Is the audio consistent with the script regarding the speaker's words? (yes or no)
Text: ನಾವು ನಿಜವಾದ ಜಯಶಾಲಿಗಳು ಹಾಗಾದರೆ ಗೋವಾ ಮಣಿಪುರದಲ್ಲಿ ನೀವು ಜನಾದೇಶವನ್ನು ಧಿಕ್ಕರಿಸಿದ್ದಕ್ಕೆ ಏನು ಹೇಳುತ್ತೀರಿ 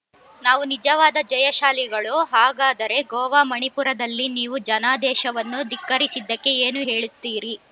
yes